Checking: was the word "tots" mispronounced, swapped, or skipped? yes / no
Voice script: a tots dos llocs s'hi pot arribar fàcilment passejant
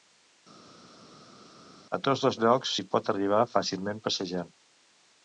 no